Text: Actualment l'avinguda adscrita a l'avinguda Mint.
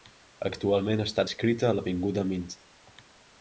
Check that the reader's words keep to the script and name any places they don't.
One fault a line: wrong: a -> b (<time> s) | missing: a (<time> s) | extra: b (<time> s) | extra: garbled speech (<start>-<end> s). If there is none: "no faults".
wrong: l'avinguda -> està (1.0 s)